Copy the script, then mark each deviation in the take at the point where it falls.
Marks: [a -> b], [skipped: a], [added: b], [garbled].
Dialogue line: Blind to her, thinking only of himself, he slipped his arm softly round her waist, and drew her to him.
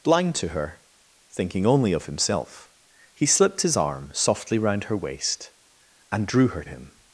Blind to her, thinking only of himself, he slipped his arm softly round her waist, and drew her [skipped: to] him.